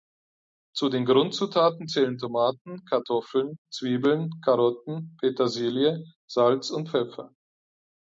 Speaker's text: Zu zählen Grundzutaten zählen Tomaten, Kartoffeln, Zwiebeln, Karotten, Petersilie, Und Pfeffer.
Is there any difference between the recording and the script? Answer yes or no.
yes